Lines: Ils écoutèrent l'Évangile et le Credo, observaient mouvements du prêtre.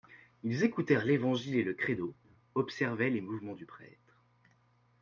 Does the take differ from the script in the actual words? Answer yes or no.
yes